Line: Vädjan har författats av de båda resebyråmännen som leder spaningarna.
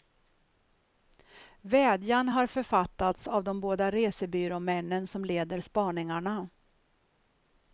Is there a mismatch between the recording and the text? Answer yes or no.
no